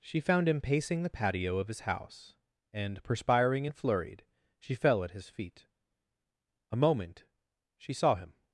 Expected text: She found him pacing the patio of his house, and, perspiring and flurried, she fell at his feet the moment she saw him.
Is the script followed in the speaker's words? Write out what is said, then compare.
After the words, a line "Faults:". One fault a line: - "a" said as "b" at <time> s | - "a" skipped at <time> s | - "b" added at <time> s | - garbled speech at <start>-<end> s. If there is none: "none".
She found him pacing the patio of his house, and, perspiring and flurried, she fell at his feet a moment she saw him.
Faults:
- "the" said as "a" at 6.7 s